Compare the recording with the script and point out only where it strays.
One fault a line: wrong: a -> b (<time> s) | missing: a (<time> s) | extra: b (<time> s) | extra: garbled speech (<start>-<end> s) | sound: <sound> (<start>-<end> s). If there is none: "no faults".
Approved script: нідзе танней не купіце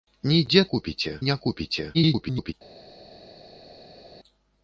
wrong: танней -> купіце (0.7 s)
extra: garbled speech (1.9-2.5 s)